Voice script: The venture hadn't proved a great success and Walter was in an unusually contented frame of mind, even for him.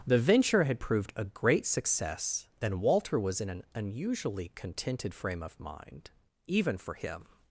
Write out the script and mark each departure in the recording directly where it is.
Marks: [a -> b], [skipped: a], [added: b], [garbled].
The venture [hadn't -> had] proved a great success and Walter was in an unusually contented frame of mind, even for him.